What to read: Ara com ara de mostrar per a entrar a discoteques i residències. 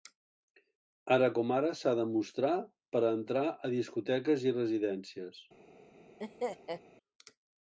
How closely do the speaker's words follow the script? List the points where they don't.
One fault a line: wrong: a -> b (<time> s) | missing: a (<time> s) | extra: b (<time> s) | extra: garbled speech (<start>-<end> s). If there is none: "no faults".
extra: s'ha (1.8 s)